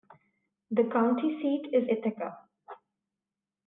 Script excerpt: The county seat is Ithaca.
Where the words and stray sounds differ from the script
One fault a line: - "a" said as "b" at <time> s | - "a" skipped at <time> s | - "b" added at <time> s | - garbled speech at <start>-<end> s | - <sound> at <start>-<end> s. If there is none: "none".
none